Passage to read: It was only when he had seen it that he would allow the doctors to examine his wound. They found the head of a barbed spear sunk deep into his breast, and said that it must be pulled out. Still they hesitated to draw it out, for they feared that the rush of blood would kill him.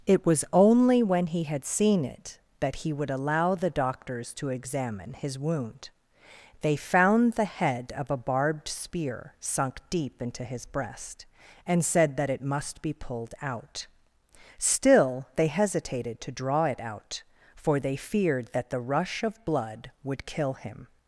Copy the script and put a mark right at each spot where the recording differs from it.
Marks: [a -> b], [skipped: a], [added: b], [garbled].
It was only when he had seen it that he would allow the doctors to examine his wound. They found the head of a barbed spear sunk deep into his breast, and said that it must be pulled out. Still they hesitated to draw it out, for they feared that the rush of blood would kill him.